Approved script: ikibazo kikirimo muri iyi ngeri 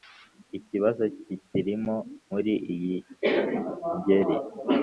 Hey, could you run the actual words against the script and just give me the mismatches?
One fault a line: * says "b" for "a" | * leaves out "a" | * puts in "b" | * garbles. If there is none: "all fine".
all fine